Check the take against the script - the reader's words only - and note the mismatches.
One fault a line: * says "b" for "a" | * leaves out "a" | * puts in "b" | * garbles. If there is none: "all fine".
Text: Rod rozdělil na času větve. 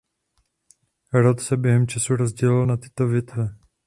* puts in "se během času"
* says "tyto" for "času"